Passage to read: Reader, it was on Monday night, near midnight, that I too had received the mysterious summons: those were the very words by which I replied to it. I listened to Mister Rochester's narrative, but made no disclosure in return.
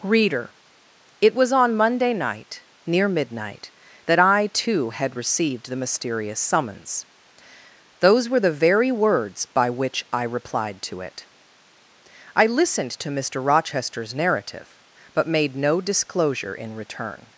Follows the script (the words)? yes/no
yes